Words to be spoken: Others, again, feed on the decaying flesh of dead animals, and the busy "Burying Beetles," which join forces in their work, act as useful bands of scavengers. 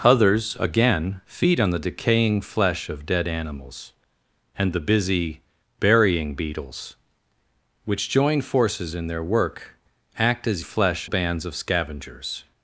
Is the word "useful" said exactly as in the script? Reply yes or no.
no